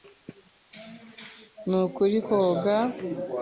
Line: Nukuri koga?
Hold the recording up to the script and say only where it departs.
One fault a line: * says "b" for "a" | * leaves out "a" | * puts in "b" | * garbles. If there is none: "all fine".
all fine